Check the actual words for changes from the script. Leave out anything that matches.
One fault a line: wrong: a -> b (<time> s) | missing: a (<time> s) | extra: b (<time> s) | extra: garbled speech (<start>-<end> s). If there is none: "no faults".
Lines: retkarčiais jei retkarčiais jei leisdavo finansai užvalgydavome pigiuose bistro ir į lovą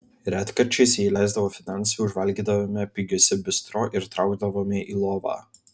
missing: retkarčiais jei (1.1 s)
extra: traukdavome (4.2 s)